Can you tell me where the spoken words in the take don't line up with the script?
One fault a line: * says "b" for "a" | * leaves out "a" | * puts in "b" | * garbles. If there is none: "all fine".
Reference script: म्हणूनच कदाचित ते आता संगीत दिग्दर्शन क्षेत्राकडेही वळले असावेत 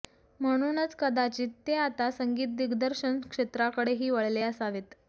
all fine